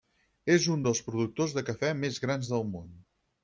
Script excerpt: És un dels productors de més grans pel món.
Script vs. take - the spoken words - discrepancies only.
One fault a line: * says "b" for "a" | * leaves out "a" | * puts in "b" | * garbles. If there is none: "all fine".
* puts in "cafè"
* says "del" for "pel"